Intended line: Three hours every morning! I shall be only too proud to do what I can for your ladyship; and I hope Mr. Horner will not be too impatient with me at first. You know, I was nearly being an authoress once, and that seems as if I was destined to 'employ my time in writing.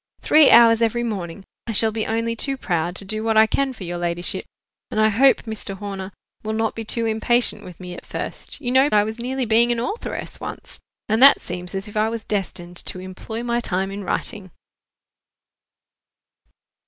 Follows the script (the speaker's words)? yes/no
yes